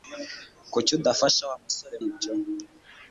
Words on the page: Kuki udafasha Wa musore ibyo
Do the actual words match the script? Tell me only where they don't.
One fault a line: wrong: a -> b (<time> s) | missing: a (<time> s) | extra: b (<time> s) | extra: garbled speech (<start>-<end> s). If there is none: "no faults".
no faults